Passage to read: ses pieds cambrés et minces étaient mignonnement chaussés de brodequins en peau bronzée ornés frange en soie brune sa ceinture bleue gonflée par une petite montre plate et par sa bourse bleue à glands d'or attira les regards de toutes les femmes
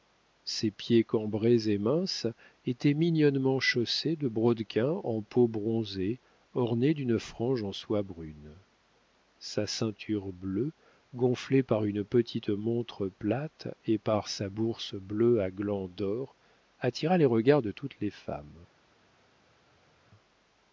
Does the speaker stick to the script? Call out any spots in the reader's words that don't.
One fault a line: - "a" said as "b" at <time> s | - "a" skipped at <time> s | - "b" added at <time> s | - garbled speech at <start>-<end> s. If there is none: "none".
- "d'une" added at 7.0 s